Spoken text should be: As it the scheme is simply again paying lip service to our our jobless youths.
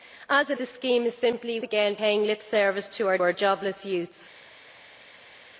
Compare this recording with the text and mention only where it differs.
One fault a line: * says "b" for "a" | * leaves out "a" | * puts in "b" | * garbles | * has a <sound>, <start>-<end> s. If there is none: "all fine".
all fine